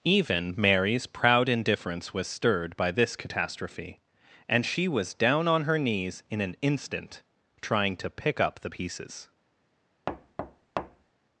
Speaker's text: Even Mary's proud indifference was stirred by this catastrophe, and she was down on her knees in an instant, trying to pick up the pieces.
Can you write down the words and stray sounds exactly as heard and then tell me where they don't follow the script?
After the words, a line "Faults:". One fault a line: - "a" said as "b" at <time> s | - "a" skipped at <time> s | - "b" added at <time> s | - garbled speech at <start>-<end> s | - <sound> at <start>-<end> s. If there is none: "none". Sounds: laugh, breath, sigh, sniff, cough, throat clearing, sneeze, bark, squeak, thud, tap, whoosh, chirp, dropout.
Even Mary's proud indifference was stirred by this catastrophe, and she was down on her knees in an instant, trying to pick up the pieces.
Faults:
- thud at 10.1-11.1 s